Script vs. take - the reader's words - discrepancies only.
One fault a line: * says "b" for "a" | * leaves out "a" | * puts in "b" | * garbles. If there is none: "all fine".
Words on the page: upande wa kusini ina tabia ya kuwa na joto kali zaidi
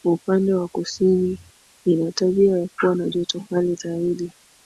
all fine